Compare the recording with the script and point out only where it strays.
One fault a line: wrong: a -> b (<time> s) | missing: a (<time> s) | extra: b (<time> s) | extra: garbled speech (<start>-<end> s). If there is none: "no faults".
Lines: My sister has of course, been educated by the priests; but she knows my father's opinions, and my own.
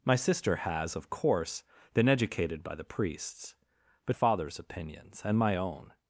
missing: she knows my (4.2 s)